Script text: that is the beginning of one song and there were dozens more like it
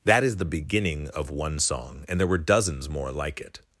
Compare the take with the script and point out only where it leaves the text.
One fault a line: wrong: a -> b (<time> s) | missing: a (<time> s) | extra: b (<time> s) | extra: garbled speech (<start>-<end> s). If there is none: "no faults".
no faults